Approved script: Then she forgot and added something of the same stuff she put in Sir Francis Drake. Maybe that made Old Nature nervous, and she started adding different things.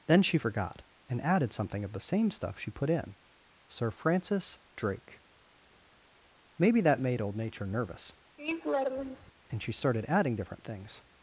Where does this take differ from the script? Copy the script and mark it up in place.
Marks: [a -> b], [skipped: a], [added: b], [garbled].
Then she forgot and added something of the same stuff she put in Sir Francis Drake. Maybe that made Old Nature nervous, and she started adding different things.